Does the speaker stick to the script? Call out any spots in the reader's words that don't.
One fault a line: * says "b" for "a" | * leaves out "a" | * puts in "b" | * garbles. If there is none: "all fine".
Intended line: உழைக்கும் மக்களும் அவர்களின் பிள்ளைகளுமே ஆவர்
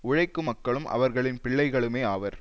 all fine